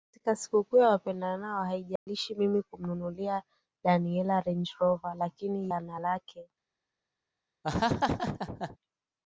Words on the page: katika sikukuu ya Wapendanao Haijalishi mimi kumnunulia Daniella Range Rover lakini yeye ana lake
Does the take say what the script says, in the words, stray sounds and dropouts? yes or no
no